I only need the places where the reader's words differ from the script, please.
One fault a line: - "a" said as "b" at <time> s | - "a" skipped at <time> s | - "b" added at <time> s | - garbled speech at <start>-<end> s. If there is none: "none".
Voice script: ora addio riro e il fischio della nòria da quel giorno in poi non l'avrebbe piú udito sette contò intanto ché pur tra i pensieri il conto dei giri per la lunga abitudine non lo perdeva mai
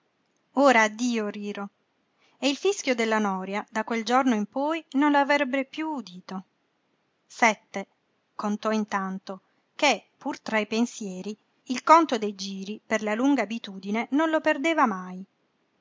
none